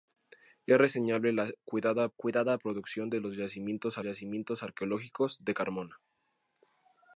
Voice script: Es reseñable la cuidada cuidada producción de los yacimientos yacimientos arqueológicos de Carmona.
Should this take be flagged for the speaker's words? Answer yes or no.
no